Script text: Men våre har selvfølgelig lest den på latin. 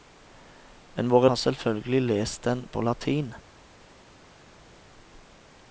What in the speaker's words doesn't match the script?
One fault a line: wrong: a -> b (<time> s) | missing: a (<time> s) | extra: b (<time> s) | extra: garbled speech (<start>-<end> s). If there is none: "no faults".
no faults